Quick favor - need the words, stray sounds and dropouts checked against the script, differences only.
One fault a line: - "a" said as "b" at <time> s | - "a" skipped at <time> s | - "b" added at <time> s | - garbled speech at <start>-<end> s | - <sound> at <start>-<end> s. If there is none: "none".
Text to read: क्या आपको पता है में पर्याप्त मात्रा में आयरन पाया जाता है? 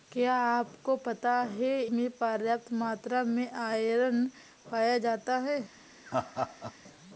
- laugh at 6.1-6.7 s